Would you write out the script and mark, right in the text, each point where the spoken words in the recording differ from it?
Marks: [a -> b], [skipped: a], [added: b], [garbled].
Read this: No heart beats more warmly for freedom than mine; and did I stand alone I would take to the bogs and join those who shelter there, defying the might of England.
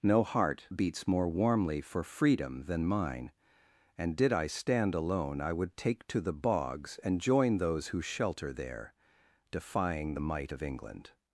No heart beats more warmly for freedom than mine; and did I stand alone I would take to the bogs and join those who shelter there, defying the might of England.